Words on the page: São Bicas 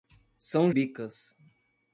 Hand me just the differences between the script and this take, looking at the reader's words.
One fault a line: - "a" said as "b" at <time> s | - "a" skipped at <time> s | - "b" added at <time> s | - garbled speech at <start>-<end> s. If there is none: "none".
none